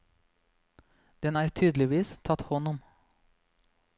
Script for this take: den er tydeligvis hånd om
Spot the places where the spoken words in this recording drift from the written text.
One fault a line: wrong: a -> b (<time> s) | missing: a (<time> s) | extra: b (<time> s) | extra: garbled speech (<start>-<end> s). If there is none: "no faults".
extra: tatt (2.3 s)